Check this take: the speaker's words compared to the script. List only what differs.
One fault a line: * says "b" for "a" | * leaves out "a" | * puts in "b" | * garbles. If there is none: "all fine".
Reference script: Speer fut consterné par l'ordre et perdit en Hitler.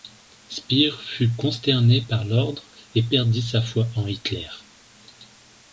* puts in "sa foi"